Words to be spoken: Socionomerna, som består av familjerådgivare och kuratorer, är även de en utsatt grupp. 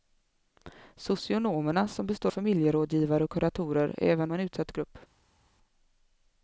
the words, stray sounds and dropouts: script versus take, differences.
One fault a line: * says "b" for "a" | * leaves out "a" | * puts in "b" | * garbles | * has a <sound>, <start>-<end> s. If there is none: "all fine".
* leaves out "av"
* leaves out "de"